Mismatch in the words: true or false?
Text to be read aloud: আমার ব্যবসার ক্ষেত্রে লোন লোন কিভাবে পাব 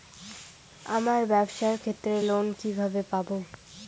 true